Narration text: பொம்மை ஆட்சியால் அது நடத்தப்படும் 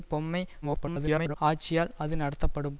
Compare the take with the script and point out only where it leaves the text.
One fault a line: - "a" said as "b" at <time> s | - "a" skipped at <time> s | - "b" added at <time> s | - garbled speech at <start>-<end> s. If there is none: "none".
- garbled speech at 0.6-1.4 s